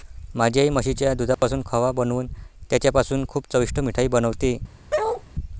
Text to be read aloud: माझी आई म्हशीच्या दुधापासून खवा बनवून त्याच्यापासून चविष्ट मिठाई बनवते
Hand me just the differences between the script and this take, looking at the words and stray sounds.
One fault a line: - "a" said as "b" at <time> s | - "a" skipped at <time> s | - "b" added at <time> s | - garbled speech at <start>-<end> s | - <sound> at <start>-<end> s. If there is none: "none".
- dropout at 1.3-1.4 s
- "खूप" added at 3.3 s
- bark at 4.9-5.2 s